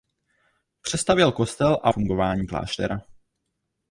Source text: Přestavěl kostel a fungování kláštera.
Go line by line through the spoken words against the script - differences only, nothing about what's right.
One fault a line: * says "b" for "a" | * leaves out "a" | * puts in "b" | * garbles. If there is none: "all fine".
all fine